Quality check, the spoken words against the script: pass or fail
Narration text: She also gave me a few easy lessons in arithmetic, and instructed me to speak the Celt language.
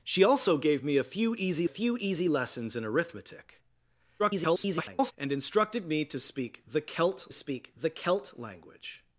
fail